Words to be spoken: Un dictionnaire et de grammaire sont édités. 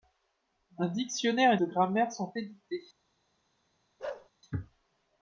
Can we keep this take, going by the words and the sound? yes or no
no